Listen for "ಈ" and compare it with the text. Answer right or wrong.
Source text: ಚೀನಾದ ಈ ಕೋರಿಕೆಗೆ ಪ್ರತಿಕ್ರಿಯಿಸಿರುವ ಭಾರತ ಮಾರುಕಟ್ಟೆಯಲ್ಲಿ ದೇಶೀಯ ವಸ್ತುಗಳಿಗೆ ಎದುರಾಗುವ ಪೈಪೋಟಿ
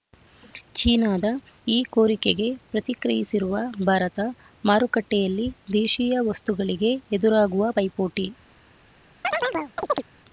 right